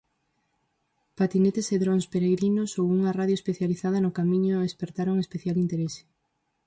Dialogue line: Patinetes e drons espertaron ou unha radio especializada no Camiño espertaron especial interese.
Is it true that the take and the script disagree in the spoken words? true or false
true